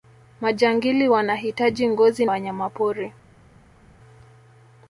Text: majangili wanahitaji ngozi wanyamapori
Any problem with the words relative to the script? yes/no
no